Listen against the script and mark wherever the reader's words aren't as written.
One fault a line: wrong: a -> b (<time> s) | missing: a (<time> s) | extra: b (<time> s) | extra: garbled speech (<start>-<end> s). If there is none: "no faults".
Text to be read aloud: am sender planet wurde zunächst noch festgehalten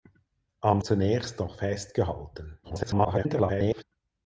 missing: sender planet wurde (0.8 s)
extra: garbled speech (2.6-3.8 s)